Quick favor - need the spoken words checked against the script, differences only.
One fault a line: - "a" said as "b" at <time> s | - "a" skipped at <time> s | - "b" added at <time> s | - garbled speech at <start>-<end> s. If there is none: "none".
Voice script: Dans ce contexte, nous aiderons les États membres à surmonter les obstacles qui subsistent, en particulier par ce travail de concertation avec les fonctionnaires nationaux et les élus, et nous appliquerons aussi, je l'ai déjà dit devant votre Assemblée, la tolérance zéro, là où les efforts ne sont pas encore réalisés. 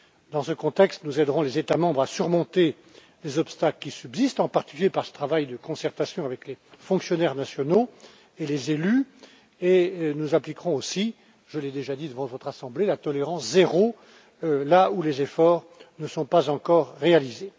none